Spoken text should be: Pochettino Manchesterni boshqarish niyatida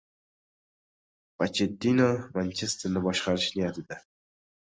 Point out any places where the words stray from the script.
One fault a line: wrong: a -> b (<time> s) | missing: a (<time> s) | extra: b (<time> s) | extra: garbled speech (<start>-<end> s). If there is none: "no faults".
no faults